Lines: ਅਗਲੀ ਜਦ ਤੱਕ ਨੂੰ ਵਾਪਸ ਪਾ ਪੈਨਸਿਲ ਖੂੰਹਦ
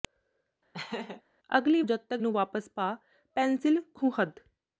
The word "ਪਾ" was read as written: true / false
true